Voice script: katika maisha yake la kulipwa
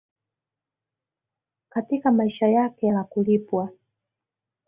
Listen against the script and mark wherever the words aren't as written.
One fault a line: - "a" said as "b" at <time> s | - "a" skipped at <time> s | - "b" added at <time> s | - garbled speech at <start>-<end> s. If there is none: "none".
none